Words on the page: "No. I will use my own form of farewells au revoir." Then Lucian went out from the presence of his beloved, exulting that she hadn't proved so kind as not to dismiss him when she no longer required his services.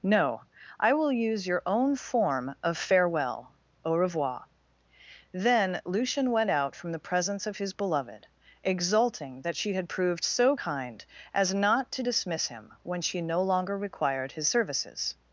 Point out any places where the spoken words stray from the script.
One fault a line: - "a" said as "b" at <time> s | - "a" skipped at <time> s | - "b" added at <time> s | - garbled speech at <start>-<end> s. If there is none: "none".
- "my" said as "your" at 1.4 s
- "farewells" said as "farewell" at 2.8 s
- "hadn't" said as "had" at 9.7 s